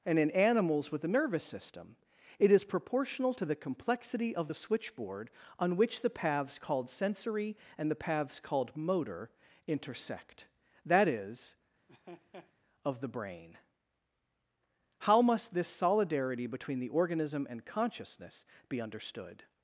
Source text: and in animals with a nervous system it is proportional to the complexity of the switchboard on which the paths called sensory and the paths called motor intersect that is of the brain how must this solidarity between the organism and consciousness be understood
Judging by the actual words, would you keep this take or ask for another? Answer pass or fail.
pass